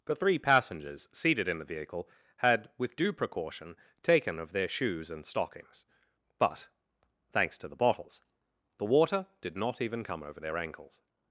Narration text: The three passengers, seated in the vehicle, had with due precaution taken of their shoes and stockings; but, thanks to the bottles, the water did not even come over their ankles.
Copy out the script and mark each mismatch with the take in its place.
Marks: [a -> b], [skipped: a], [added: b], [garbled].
The three passengers, seated in the vehicle, had with due precaution taken of their shoes and stockings; but, thanks to the bottles, the water did not even come over their ankles.